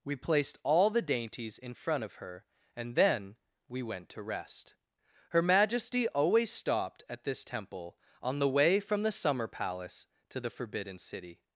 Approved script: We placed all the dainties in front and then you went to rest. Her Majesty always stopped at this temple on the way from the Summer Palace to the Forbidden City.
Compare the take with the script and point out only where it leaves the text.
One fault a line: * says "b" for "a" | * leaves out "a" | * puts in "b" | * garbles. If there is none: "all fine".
* puts in "of her"
* says "we" for "you"